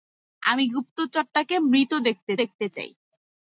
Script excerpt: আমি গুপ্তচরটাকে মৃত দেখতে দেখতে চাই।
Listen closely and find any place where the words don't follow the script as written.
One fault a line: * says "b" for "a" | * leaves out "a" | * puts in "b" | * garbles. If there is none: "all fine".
all fine